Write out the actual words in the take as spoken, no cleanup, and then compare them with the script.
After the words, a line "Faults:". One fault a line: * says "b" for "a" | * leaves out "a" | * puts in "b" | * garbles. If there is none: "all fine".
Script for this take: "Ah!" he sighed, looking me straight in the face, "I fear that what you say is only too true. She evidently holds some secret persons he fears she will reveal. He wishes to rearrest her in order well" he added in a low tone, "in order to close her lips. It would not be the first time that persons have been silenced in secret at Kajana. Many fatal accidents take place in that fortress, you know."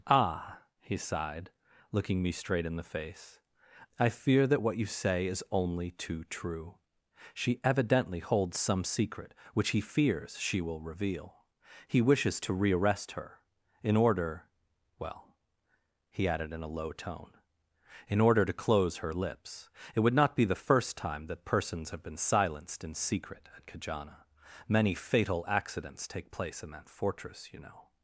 "Ah!" he sighed, looking me straight in the face, "I fear that what you say is only too true. She evidently holds some secret which he fears she will reveal. He wishes to rearrest her in order well" he added in a low tone, "in order to close her lips. It would not be the first time that persons have been silenced in secret at Kajana. Many fatal accidents take place in that fortress, you know."
Faults:
* says "which" for "persons"